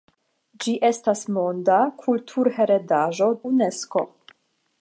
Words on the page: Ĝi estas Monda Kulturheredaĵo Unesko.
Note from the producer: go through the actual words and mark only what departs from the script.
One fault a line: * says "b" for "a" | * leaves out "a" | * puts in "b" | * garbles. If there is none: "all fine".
all fine